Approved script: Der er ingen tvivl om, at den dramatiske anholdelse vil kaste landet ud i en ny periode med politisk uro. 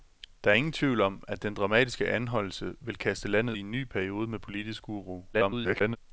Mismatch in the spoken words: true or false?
true